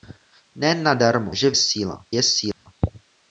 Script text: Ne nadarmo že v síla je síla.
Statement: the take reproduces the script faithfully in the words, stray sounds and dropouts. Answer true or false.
false